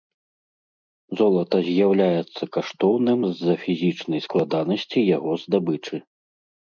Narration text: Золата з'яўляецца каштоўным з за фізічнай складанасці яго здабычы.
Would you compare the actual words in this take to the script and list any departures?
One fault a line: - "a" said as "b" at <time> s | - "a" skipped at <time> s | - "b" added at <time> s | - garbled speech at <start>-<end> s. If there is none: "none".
none